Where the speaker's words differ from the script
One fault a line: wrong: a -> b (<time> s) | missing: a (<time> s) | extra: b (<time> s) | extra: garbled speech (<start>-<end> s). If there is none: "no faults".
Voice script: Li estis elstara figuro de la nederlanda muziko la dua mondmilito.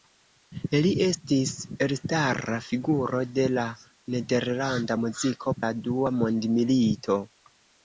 no faults